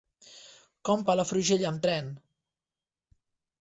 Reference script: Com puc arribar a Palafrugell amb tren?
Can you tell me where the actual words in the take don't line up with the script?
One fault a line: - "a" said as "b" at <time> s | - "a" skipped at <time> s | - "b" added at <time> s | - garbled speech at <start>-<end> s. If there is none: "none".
- "puc arribar" skipped at 1.0 s